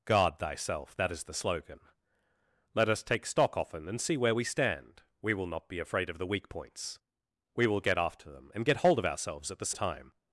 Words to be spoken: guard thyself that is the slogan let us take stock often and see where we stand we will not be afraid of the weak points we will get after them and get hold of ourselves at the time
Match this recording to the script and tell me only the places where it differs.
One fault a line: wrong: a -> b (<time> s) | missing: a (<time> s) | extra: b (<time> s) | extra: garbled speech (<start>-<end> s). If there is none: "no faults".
no faults